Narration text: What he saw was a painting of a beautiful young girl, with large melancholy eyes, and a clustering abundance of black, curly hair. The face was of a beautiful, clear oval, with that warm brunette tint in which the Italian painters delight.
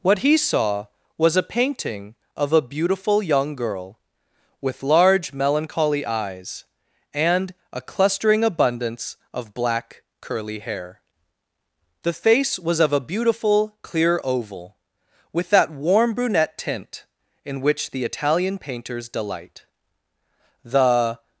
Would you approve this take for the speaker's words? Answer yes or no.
no